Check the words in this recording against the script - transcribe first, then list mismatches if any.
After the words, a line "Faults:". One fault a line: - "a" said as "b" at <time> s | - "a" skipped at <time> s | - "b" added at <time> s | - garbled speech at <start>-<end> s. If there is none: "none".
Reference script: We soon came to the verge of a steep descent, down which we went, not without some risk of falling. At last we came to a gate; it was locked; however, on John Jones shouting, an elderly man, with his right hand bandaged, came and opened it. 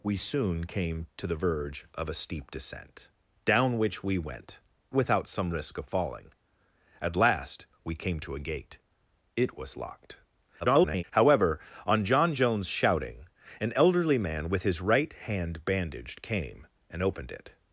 We soon came to the verge of a steep descent, down which we went, without some risk of falling. At last we came to a gate; it was locked; [garbled] however, on John Jones shouting, an elderly man, with his right hand bandaged, came and opened it.
Faults:
- "not" skipped at 4.6 s
- garbled speech at 10.6-11.0 s